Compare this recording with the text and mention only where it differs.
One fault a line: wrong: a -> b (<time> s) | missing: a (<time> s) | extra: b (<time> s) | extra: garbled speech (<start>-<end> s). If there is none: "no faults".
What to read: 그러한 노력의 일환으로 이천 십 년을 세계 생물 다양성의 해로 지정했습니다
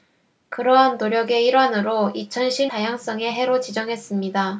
missing: 년을 세계 생물 (2.7 s)